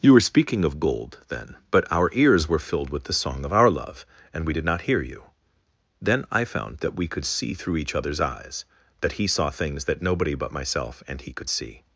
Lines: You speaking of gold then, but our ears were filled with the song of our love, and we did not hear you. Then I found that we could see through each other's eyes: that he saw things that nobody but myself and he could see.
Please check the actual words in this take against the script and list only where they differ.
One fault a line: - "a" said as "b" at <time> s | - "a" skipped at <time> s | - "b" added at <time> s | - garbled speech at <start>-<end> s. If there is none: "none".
- "were" added at 0.1 s